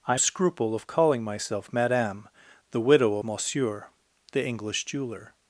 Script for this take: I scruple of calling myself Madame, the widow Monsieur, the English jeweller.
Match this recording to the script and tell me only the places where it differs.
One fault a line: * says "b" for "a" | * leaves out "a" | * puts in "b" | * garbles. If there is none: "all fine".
all fine